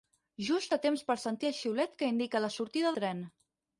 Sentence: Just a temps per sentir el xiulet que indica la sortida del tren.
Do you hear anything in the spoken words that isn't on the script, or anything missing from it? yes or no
yes